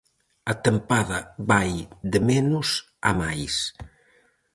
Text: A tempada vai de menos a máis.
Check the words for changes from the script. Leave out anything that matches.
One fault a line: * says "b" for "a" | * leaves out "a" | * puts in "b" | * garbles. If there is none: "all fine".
all fine